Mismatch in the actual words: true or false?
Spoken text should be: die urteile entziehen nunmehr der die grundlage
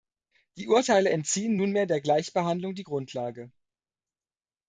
true